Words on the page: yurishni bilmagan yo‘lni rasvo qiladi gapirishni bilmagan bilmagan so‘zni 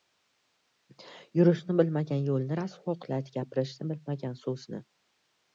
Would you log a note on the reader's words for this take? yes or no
yes